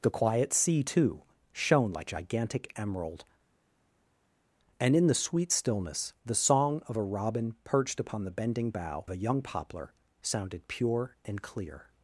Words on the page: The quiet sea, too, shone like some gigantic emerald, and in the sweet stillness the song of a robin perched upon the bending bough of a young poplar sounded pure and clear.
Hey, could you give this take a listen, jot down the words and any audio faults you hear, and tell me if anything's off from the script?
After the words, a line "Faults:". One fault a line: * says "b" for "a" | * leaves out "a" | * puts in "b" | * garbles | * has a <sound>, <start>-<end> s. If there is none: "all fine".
The quiet sea, too, shone like gigantic emerald, and in the sweet stillness the song of a robin perched upon the bending bough a young poplar sounded pure and clear.
Faults:
* leaves out "some"
* leaves out "of"